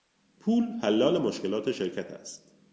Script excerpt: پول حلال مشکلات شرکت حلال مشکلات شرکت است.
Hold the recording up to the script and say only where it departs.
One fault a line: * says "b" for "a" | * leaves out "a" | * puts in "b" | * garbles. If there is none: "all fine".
* leaves out "حلال مشکلات شرکت"